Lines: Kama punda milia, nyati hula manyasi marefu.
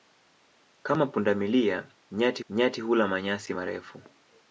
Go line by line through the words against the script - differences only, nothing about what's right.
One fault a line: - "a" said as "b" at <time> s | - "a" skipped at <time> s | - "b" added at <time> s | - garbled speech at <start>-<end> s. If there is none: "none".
- "nyati" added at 2.5 s